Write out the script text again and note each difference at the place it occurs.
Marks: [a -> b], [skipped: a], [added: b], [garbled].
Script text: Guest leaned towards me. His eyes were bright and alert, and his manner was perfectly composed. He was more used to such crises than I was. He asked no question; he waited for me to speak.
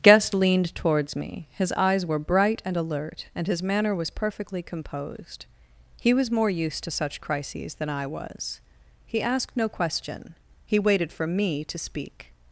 Guest leaned towards me. His eyes were bright and alert, and his manner was perfectly composed. He was more used to such crises than I was. He asked no question; he waited for me to speak.